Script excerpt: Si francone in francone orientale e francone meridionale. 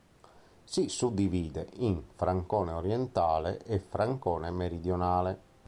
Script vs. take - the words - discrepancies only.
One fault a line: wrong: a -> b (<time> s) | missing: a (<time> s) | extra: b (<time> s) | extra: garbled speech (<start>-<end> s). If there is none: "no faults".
wrong: francone -> suddivide (0.9 s)